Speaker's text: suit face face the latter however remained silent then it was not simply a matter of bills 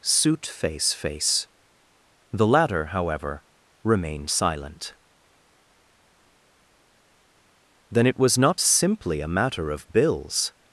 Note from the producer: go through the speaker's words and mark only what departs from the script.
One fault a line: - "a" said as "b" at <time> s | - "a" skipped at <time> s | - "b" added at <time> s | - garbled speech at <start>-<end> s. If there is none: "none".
none